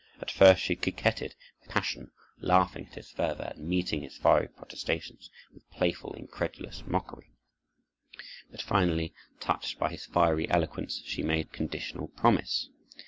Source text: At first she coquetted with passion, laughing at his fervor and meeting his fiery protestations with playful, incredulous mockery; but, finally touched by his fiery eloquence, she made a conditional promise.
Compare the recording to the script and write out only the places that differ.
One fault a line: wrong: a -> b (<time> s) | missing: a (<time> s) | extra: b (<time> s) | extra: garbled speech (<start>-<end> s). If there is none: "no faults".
no faults